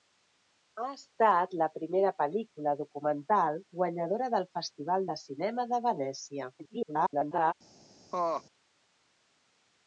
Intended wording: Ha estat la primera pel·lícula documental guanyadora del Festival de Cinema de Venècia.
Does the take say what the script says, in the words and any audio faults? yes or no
no